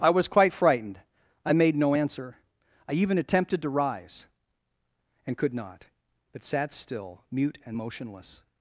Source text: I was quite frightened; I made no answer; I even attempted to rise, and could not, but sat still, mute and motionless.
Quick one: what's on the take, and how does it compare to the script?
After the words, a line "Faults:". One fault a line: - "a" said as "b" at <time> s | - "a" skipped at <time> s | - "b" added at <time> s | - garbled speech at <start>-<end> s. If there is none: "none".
I was quite frightened; I made no answer; I even attempted to rise, and could not, but sat still, mute and motionless.
Faults:
none